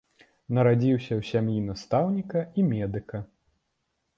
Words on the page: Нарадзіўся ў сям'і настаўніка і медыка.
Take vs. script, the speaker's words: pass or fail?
pass